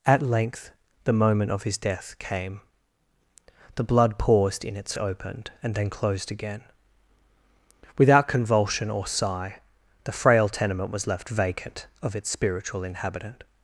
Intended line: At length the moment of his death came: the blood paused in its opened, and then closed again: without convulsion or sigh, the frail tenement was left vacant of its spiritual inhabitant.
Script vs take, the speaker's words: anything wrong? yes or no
no